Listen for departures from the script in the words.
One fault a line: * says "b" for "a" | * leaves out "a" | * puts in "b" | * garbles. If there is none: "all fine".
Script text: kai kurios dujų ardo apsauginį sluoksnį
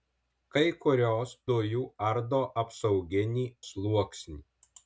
all fine